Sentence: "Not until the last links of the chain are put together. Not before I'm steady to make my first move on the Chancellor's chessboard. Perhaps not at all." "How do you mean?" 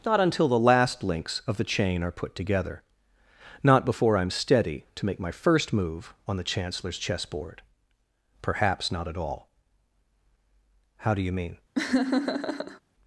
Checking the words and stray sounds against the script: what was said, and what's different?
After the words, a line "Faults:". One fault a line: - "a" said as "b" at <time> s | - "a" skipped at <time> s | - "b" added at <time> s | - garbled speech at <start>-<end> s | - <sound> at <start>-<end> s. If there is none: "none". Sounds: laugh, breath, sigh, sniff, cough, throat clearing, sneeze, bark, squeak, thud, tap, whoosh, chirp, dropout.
"Not until the last links of the chain are put together. Not before I'm steady to make my first move on the Chancellor's chessboard. Perhaps not at all." "How do you mean?"
Faults:
- laugh at 11.7-12.8 s